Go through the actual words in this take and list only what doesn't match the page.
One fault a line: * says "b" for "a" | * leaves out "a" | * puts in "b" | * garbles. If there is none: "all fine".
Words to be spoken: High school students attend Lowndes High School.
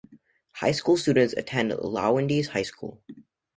all fine